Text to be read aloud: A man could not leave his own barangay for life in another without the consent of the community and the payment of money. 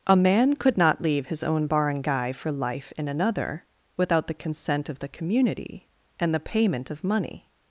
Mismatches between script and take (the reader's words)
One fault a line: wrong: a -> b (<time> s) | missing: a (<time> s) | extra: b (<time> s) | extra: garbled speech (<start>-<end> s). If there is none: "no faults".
no faults